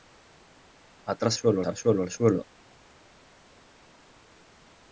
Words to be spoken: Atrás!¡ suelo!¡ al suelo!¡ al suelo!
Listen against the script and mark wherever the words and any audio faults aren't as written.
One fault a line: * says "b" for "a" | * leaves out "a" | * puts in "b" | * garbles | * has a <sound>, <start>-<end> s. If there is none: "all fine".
all fine